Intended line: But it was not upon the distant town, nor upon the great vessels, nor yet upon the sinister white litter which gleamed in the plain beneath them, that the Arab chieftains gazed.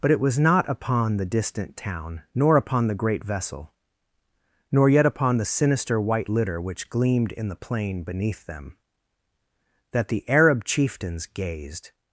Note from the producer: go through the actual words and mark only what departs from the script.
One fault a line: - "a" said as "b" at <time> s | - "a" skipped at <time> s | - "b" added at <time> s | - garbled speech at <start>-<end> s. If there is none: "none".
- "vessels" said as "vessel" at 3.2 s